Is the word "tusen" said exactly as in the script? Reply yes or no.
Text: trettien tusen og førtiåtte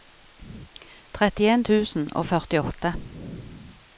yes